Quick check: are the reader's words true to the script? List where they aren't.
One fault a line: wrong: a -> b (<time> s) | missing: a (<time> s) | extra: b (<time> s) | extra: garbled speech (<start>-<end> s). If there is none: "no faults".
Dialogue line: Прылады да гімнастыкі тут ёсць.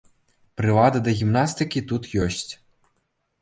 no faults